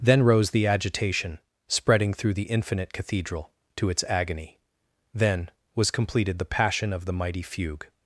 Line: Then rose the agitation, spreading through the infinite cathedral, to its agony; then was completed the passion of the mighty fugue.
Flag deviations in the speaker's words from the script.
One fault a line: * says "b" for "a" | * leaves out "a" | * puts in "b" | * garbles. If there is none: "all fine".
all fine